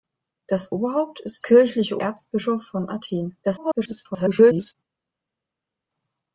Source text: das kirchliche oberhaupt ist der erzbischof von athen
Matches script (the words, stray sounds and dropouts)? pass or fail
fail